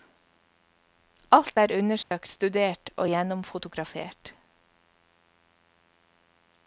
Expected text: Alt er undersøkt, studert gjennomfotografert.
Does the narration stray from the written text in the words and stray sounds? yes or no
yes